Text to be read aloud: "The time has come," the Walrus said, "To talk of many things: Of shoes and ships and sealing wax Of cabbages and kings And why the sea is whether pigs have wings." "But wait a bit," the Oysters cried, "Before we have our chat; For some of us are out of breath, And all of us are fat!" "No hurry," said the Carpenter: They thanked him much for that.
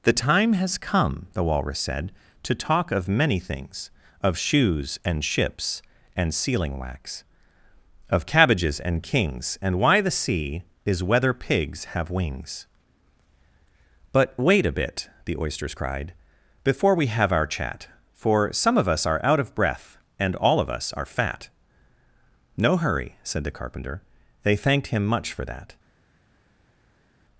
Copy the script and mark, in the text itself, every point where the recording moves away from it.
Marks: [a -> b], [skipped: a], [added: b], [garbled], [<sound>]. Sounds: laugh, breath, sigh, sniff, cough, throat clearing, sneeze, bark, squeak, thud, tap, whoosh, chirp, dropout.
"The time has come," the Walrus said, "To talk of many things: Of shoes and ships and sealing wax Of cabbages and kings And why the sea is whether pigs have wings." "But wait a bit," the Oysters cried, "Before we have our chat; For some of us are out of breath, And all of us are fat!" "No hurry," said the Carpenter: They thanked him much for that.